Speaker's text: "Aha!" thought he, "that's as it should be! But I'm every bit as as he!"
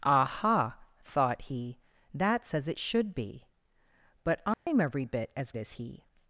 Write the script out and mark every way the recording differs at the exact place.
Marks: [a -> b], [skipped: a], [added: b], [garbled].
"Aha!" thought he, "that's as it should be! But I'm every bit as as he!"